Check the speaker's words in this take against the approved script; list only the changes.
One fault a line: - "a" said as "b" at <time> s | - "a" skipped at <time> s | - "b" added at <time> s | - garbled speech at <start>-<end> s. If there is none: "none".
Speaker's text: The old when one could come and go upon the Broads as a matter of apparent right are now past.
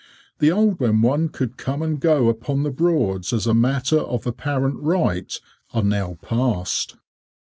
none